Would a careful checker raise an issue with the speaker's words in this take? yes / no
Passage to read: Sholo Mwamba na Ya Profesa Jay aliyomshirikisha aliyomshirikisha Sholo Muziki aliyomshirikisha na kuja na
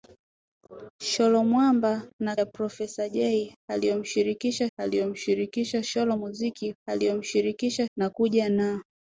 no